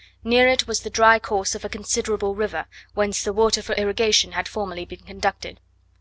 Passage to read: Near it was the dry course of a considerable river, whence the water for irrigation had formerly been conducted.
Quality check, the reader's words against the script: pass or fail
pass